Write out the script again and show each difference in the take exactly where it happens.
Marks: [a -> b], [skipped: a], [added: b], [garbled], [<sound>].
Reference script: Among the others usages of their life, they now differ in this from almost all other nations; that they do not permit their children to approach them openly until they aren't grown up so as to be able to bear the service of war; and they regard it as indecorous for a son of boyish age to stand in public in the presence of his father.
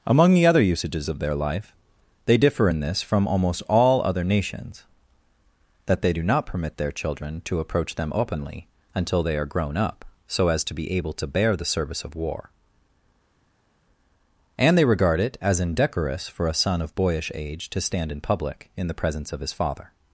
Among the [others -> other] usages of their life, they [skipped: now] differ in this from almost all other nations; that they do not permit their children to approach them openly until they [aren't -> are] grown up so as to be able to bear the service of war; and they regard it as indecorous for a son of boyish age to stand in public in the presence of his father.